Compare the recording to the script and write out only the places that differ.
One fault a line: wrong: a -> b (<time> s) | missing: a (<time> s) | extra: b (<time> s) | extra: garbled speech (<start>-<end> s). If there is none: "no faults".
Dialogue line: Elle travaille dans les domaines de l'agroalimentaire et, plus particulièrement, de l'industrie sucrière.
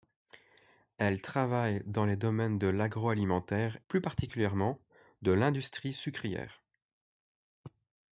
missing: et (3.8 s)